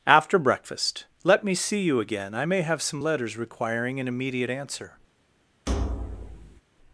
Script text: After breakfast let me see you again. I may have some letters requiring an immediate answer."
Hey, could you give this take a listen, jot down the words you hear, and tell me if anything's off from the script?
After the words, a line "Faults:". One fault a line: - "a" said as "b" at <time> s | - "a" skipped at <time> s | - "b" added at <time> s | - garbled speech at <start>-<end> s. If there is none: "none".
After breakfast let me see you again. I may have some letters requiring an immediate answer."
Faults:
none